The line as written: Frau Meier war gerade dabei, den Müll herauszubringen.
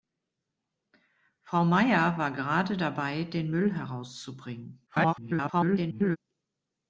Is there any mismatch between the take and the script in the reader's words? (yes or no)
yes